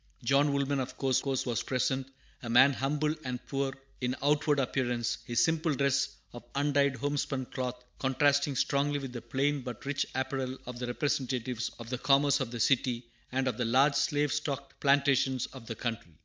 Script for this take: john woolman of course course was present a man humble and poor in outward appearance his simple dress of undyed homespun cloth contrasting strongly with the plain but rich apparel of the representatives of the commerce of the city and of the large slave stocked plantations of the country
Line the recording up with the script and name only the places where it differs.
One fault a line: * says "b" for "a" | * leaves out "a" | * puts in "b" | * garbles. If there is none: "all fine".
all fine